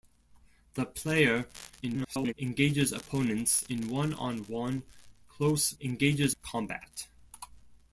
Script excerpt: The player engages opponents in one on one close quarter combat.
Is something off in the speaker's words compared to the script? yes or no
yes